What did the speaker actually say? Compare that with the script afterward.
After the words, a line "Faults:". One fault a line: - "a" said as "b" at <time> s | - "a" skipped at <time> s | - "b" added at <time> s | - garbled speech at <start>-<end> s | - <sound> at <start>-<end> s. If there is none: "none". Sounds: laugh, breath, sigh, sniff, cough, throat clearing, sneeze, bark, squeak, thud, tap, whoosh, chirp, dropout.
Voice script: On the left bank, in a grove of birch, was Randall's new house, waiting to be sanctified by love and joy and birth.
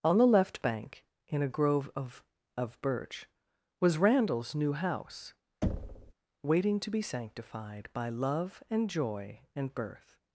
On the left bank, in a grove of of birch, was Randall's new house, waiting to be sanctified by love and joy and birth.
Faults:
- "of" added at 2.6 s
- thud at 5.6-6.1 s